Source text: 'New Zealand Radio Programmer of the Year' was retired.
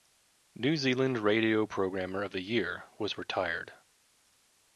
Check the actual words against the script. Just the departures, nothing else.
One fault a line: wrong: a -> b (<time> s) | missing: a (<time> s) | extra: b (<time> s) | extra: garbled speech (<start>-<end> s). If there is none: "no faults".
no faults